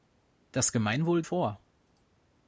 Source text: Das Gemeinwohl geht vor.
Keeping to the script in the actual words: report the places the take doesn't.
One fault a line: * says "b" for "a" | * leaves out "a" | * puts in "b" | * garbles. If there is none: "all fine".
* leaves out "geht"